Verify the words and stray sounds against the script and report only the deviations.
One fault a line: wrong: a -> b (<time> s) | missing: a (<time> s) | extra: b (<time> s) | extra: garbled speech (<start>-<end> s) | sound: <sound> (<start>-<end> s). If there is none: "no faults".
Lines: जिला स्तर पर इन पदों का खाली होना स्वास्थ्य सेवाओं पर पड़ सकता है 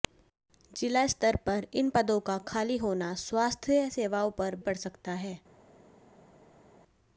no faults